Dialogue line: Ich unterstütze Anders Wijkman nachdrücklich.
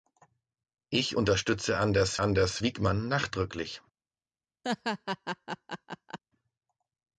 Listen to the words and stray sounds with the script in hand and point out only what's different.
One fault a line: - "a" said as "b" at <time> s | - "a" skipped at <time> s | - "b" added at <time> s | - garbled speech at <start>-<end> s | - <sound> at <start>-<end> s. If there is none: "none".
- "Anders" added at 2.2 s
- laugh at 4.6-6.2 s